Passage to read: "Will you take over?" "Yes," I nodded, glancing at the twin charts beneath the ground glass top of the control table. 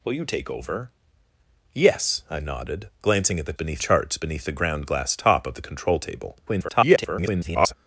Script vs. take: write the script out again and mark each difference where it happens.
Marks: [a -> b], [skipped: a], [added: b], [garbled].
"Will you take over?" "Yes," I nodded, glancing at the [twin -> beneath] charts beneath the ground glass top of the control table. [garbled]